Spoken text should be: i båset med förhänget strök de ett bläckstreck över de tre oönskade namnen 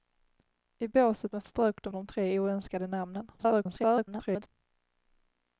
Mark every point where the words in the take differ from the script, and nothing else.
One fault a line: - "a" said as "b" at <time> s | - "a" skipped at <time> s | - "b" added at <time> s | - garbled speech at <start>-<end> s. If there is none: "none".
- "förhänget" skipped at 1.4 s
- "ett bläckstreck över" skipped at 1.9 s
- garbled speech at 3.4-4.5 s